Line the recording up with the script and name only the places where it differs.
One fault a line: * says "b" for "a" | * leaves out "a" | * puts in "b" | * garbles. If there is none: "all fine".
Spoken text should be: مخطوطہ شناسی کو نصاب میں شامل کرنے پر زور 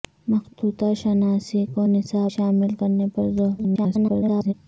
* leaves out "میں"
* garbles